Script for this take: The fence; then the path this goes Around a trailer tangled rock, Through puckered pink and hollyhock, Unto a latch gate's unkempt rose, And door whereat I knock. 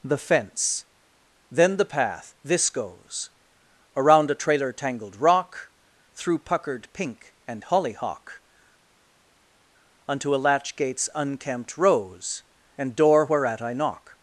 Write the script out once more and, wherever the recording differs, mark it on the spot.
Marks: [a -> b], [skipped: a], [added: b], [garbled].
The fence; then the path this goes Around a trailer tangled rock, Through puckered pink and hollyhock, Unto a latch gate's unkempt rose, And door whereat I knock.